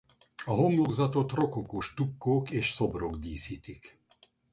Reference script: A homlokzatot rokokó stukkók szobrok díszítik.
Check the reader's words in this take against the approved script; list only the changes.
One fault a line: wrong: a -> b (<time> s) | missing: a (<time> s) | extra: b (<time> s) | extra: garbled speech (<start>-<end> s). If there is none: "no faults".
extra: és (2.5 s)